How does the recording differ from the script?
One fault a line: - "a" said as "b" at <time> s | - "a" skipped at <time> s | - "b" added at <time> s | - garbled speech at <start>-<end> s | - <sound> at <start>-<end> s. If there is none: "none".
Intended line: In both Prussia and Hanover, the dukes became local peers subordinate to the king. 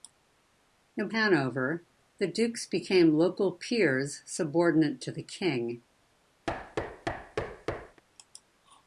- "both Prussia and" skipped at 1.1 s
- thud at 6.5-8.0 s